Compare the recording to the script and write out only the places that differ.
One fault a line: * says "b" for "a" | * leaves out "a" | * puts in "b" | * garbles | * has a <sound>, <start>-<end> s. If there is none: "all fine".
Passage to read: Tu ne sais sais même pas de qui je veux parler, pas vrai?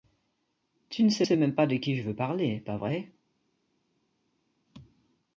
all fine